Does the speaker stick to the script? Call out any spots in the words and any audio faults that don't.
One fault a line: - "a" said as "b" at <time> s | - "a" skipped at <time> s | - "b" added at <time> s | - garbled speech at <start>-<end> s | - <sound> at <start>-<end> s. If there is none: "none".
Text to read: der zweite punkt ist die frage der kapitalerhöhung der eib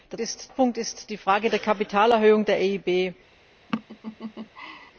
- "zweite" said as "ist" at 0.2 s
- laugh at 3.7-4.9 s